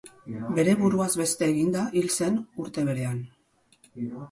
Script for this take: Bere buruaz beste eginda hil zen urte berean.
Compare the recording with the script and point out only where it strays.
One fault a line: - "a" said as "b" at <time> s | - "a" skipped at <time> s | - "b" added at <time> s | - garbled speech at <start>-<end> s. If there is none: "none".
none